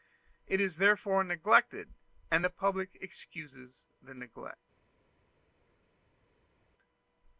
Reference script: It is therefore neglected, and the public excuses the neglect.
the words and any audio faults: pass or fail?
pass